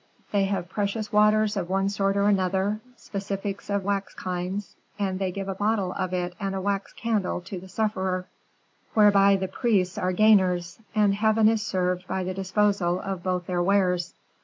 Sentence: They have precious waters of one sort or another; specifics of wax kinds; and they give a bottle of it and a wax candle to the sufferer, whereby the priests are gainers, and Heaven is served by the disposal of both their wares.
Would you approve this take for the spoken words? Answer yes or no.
yes